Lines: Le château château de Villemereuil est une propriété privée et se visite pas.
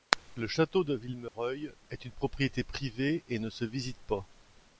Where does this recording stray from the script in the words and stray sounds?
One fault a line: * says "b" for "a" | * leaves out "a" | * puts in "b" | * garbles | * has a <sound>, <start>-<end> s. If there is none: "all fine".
* leaves out "château"
* has a dropout, 1.3-1.3 s
* puts in "ne"